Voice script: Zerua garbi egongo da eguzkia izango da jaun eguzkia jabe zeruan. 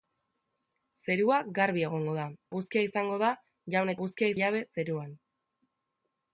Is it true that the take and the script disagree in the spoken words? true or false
false